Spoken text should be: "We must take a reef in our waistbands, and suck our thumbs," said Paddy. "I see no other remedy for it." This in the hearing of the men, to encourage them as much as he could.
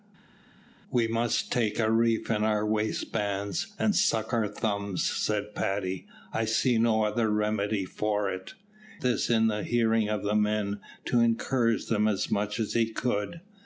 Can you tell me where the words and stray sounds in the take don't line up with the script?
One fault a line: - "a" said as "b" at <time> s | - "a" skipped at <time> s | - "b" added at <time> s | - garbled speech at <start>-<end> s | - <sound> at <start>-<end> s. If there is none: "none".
none